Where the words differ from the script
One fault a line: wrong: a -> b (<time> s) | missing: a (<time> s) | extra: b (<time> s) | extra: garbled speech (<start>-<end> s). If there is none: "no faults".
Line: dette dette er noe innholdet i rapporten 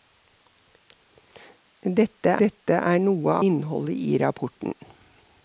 no faults